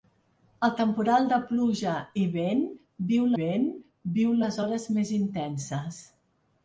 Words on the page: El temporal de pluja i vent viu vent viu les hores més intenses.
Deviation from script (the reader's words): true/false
false